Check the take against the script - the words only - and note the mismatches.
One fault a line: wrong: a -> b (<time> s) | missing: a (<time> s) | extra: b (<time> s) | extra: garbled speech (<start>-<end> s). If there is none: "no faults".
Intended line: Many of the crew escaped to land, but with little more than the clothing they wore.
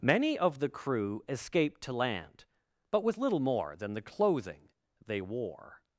no faults